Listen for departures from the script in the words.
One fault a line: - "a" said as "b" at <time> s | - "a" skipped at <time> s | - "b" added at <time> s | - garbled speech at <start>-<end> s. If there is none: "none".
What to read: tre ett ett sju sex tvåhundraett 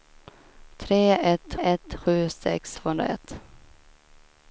none